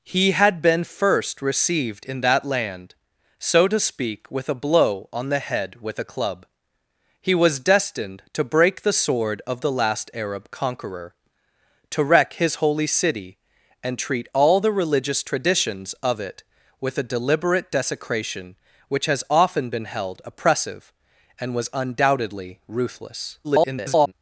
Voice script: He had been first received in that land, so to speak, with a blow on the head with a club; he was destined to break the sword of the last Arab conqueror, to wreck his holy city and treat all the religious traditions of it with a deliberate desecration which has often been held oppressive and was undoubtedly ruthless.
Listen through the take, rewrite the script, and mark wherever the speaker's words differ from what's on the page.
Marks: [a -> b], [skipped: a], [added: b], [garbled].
He had been first received in that land, so to speak, with a blow on the head with a club; he was destined to break the sword of the last Arab conqueror, to wreck his holy city and treat all the religious traditions of it with a deliberate desecration which has often been held oppressive and was undoubtedly ruthless. [garbled]